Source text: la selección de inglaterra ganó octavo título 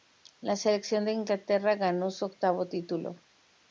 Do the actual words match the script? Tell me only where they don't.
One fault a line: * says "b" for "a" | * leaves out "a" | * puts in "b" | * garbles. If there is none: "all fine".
* puts in "su"